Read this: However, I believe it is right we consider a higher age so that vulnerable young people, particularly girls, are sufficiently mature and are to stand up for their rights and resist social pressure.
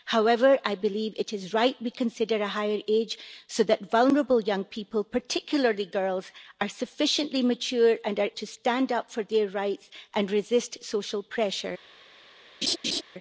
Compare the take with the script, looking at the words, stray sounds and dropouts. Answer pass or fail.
fail